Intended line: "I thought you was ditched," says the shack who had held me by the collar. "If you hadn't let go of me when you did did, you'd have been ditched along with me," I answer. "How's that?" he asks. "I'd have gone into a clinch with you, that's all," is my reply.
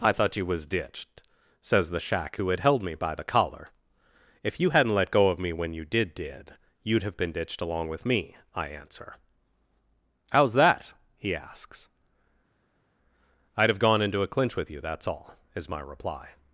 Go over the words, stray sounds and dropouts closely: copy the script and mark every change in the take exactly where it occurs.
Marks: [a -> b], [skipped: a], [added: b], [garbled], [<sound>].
"I thought you was ditched," says the shack who had held me by the collar. "If you hadn't let go of me when you did did, you'd have been ditched along with me," I answer. "How's that?" he asks. "I'd have gone into a clinch with you, that's all," is my reply.